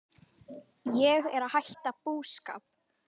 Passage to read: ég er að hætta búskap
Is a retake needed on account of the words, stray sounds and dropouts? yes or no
no